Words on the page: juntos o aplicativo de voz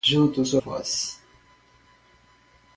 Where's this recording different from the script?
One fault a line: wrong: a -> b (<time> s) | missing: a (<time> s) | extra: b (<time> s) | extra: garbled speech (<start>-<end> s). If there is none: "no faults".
missing: aplicativo de (0.6 s)